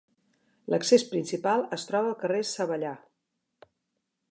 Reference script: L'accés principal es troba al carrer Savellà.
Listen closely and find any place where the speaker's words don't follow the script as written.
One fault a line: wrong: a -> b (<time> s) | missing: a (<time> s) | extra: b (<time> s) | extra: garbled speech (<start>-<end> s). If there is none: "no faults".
no faults